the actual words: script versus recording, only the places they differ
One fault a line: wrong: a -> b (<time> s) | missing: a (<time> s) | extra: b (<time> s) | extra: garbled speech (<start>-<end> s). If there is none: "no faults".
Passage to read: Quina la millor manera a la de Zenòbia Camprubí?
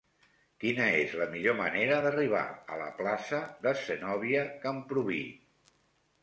extra: és (1.0 s)
extra: d'arribar (2.1 s)
extra: plaça (3.0 s)